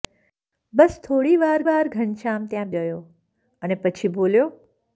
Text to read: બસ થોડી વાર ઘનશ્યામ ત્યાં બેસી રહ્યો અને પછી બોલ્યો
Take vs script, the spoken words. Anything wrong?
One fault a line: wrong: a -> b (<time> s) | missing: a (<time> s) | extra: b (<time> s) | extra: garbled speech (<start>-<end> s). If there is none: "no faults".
extra: વાર (1.6 s)
missing: બેસી (2.7 s)